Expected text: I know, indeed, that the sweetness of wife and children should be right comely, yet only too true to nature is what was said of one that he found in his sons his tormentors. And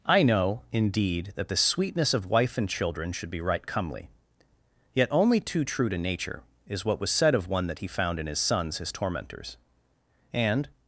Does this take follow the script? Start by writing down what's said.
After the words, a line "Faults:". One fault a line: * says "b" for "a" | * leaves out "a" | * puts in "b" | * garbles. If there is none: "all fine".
I know, indeed, that the sweetness of wife and children should be right comely, yet only too true to nature is what was said of one that he found in his sons his tormentors. And
Faults:
all fine